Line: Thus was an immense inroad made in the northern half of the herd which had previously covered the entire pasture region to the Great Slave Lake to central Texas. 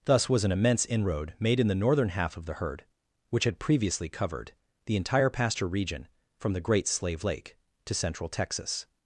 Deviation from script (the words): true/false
true